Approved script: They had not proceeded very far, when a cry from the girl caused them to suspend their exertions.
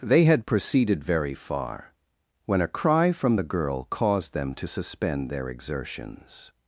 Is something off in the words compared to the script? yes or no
yes